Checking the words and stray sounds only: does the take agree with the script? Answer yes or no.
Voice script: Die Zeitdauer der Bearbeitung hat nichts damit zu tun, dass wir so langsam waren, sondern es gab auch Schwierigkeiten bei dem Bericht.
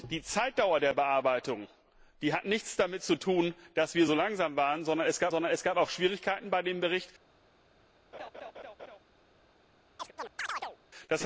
no